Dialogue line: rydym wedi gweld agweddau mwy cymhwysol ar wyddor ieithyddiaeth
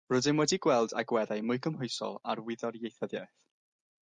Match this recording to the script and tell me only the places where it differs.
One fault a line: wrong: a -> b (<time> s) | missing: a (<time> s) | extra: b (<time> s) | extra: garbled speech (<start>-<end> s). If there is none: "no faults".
no faults